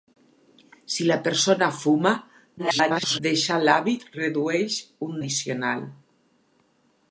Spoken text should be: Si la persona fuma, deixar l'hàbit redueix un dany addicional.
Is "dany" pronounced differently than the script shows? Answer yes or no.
yes